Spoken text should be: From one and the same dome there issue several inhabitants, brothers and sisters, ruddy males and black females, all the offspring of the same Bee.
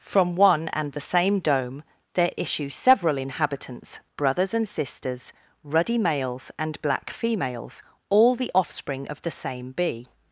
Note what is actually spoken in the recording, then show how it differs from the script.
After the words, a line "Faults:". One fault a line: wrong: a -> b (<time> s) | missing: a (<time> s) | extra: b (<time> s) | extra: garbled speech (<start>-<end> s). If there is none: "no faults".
From one and the same dome there issue several inhabitants, brothers and sisters, ruddy males and black females, all the offspring of the same Bee.
Faults:
no faults